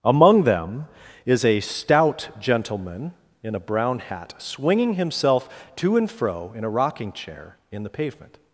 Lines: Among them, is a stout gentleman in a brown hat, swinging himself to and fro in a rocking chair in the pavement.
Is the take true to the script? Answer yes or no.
yes